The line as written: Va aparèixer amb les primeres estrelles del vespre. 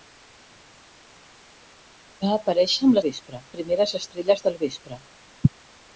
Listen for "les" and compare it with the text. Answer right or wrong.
wrong